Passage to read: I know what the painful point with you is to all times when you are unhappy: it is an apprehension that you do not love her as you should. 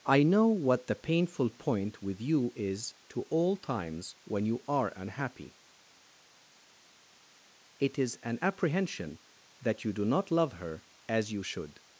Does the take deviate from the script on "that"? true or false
false